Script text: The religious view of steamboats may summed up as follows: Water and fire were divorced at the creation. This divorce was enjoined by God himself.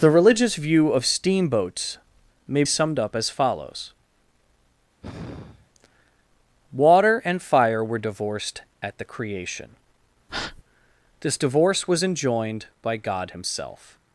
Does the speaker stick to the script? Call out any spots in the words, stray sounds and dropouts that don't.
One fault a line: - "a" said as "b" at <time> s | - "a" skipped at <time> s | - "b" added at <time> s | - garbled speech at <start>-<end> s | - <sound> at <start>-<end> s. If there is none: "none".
- sigh at 5.0-5.7 s
- breath at 10.3-10.6 s